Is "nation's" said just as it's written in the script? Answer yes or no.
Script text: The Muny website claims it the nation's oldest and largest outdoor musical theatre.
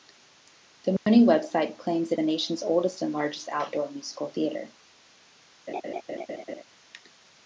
yes